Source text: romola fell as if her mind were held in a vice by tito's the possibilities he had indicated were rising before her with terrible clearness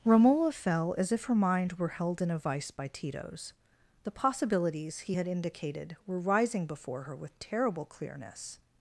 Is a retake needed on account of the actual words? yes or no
no